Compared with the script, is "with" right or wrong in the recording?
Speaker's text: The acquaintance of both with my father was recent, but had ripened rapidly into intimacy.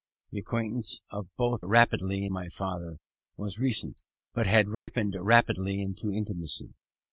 wrong